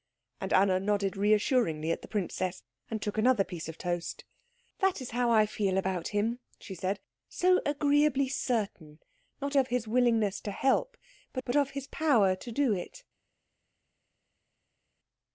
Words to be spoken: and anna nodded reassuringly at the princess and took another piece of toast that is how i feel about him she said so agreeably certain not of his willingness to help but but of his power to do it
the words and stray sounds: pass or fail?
pass